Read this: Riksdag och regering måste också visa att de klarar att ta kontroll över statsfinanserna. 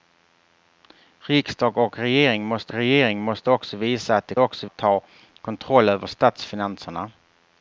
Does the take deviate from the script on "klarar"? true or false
true